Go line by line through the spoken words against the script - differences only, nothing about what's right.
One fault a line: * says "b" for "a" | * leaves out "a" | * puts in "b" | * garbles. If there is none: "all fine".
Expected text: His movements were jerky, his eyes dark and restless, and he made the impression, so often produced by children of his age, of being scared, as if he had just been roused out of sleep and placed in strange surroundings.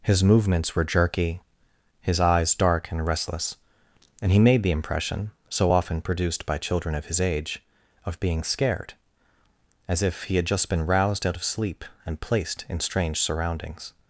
all fine